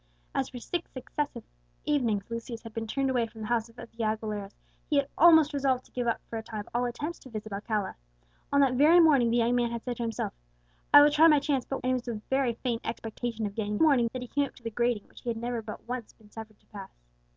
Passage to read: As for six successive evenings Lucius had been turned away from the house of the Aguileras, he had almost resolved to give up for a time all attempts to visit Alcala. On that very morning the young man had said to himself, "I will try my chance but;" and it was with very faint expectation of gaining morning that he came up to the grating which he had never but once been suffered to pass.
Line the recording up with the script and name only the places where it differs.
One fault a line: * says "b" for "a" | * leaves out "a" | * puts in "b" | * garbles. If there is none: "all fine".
all fine